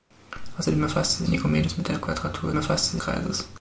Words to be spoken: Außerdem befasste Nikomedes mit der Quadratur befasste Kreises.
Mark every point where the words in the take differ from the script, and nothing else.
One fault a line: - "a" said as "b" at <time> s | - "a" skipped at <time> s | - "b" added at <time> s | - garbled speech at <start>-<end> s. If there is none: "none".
none